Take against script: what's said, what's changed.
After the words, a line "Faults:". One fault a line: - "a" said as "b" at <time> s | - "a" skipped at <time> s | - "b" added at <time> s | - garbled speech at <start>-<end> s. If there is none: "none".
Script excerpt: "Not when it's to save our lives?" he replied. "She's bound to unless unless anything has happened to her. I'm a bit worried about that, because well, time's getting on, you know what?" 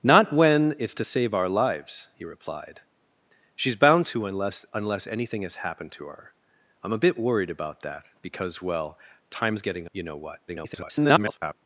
"Not when it's to save our lives?" he replied. "She's bound to unless unless anything has happened to her. I'm a bit worried about that, because well, time's getting you know what?" [garbled]
Faults:
- "on" skipped at 9.9 s
- garbled speech at 10.5-11.5 s